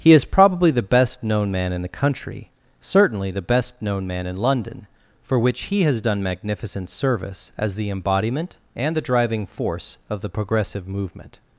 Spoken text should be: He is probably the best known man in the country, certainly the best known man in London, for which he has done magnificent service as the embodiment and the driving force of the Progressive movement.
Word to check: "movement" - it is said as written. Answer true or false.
true